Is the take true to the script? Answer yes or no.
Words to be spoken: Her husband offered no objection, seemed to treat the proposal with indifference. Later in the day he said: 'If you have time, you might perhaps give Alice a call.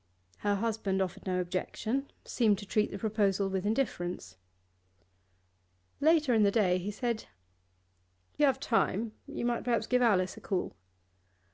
no